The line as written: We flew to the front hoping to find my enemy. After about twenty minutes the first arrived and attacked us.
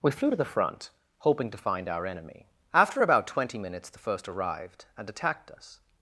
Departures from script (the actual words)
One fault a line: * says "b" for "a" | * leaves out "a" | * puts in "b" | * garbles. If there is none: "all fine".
* says "our" for "my"